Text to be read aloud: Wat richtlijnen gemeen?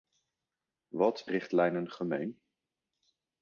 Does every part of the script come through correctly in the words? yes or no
yes